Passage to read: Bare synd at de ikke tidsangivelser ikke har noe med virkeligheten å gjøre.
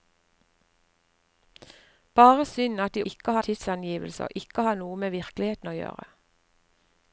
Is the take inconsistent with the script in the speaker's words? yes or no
no